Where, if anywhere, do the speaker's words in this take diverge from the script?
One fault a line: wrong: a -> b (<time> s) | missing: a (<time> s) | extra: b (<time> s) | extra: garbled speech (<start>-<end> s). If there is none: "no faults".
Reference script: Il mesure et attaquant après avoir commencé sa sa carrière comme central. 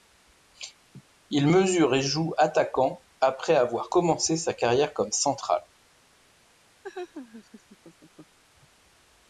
extra: joue (2.0 s)
missing: sa (4.5 s)